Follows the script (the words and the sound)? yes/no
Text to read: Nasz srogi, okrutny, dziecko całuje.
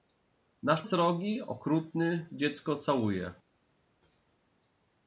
yes